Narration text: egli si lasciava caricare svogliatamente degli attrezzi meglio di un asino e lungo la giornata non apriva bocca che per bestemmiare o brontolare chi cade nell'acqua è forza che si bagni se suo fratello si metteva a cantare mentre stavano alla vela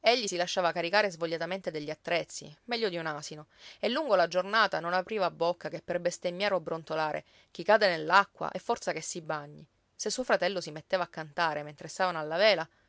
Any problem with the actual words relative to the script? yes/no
no